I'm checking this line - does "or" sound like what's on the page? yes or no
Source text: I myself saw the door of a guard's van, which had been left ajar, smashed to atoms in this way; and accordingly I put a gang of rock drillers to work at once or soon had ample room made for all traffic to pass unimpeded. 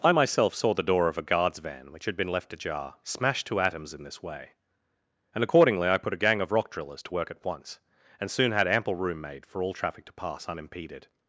no